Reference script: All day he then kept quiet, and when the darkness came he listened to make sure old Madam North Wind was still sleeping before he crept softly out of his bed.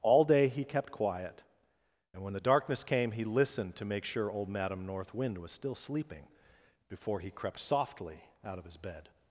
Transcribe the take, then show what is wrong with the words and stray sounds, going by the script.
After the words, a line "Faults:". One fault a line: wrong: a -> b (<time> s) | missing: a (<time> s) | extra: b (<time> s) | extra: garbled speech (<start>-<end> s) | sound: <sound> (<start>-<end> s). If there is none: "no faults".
All day he kept quiet, and when the darkness came he listened to make sure old Madam North Wind was still sleeping before he crept softly out of his bed.
Faults:
missing: then (0.6 s)